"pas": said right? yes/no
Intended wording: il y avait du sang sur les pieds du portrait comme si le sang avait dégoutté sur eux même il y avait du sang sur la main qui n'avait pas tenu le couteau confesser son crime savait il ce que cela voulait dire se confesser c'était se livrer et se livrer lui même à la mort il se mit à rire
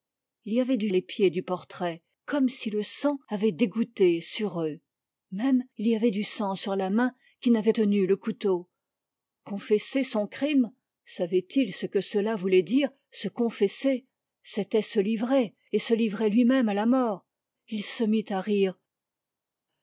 no